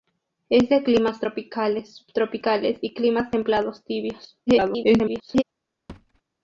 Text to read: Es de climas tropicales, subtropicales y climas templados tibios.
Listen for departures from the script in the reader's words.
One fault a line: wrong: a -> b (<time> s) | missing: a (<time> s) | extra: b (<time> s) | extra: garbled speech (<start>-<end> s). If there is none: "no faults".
extra: garbled speech (4.5-5.4 s)